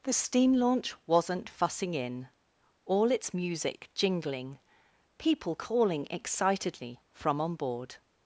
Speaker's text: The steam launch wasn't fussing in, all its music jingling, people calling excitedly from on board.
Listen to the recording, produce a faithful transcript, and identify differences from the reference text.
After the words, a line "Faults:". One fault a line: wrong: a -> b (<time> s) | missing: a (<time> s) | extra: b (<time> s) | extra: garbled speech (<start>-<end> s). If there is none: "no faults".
The steam launch wasn't fussing in, all its music jingling, people calling excitedly from on board.
Faults:
no faults